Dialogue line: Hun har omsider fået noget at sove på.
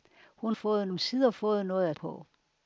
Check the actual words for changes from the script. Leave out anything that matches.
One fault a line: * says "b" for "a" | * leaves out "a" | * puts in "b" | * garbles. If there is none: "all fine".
* says "fået" for "har"
* leaves out "sove"